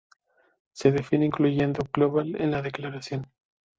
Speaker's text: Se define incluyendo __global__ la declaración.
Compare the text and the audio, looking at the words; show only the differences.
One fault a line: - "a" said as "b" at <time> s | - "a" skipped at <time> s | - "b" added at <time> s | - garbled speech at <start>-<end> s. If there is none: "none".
- "en" added at 2.4 s